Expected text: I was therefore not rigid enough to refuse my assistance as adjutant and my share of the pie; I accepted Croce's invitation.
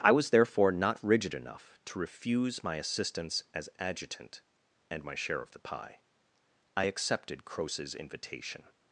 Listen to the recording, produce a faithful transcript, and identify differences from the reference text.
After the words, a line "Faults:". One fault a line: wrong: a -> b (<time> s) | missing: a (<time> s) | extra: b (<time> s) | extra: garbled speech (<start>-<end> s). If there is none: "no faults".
I was therefore not rigid enough to refuse my assistance as adjutant and my share of the pie; I accepted Croce's invitation.
Faults:
no faults